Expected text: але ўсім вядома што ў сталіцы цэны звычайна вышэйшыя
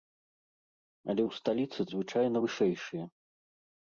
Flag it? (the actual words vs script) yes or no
yes